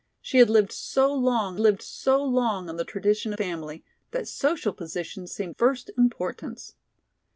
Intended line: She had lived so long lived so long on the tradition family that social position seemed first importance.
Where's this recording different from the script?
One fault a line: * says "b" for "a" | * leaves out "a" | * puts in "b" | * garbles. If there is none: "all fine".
all fine